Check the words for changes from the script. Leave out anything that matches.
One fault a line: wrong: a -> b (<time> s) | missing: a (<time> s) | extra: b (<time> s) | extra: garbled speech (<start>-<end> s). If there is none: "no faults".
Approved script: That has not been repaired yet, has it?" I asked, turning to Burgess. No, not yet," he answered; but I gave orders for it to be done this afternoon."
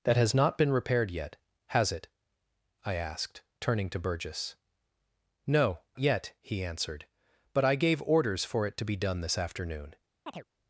missing: not (5.8 s)